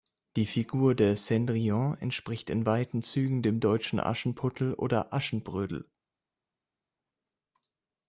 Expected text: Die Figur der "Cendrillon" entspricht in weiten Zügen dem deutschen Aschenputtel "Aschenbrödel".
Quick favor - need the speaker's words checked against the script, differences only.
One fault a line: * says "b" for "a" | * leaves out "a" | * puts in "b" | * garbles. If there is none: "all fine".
* puts in "oder"